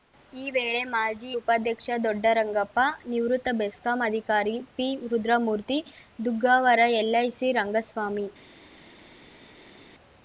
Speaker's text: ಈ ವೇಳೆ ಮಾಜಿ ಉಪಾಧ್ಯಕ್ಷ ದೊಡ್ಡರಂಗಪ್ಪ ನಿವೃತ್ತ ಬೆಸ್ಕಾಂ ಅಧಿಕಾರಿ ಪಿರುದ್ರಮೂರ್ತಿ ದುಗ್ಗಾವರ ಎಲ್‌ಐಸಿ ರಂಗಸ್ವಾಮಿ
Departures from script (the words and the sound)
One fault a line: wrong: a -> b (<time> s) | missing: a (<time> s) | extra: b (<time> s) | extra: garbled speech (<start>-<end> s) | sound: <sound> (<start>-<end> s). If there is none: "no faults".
no faults